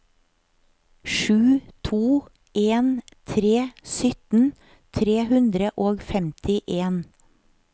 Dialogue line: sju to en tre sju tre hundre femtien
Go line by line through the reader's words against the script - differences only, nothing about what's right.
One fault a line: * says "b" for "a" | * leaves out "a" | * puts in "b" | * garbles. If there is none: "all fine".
* says "sytten" for "sju"
* puts in "og"